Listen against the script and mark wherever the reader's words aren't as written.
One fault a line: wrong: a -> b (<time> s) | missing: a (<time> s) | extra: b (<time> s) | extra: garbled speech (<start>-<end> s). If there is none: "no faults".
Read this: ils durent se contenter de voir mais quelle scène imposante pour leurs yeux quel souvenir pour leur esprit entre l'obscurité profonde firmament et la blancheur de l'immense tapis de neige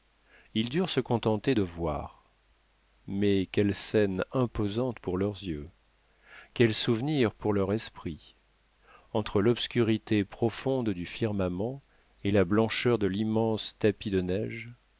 extra: du (10.9 s)